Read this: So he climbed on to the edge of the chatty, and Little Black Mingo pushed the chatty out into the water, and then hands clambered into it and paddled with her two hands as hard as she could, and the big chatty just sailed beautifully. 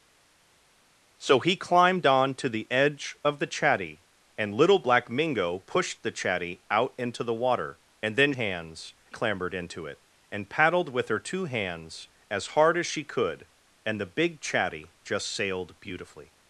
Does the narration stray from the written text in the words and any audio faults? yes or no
no